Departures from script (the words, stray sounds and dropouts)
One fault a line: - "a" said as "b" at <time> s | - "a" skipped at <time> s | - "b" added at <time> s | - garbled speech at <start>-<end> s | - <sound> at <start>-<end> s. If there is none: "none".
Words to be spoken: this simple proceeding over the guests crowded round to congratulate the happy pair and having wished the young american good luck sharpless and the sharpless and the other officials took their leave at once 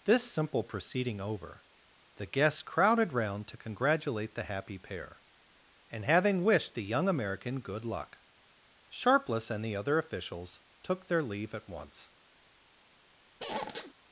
- "sharpless and the" skipped at 9.8 s
- squeak at 13.4-13.9 s